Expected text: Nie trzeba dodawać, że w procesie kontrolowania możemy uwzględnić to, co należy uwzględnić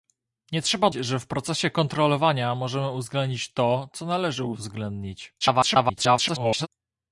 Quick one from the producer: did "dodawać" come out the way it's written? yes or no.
no